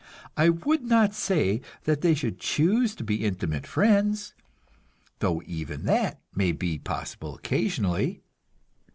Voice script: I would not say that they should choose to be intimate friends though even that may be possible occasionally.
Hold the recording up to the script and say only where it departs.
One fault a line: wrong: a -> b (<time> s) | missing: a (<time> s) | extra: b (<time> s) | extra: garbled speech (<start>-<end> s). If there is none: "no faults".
no faults